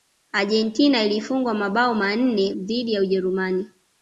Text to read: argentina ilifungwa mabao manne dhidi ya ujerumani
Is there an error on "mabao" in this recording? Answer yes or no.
no